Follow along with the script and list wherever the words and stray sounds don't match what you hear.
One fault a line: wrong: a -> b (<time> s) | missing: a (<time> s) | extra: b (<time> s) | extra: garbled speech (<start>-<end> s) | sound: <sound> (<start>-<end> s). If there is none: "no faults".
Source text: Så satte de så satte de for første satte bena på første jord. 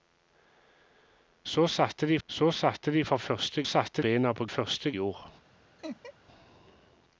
sound: laugh (5.8-6.1 s)